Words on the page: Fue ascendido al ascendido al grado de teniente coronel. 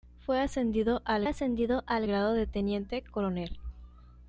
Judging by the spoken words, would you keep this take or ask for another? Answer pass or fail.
pass